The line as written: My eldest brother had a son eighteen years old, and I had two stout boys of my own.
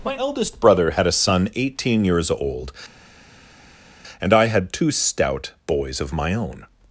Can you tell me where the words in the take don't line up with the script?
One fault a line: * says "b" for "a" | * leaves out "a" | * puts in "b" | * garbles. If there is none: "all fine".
all fine